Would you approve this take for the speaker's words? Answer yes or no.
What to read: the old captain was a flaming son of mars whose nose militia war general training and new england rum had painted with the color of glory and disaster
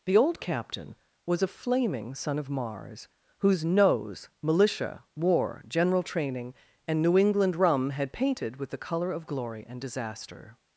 yes